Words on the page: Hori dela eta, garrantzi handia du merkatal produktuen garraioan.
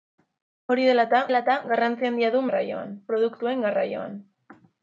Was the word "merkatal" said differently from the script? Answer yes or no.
yes